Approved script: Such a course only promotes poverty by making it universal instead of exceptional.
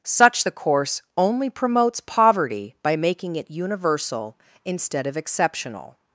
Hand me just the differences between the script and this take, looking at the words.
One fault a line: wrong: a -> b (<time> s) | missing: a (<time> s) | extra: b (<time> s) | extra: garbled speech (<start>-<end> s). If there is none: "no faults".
wrong: a -> the (0.4 s)